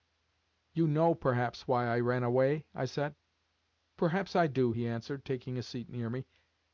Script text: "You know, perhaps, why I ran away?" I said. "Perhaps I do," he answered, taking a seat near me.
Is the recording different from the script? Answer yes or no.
no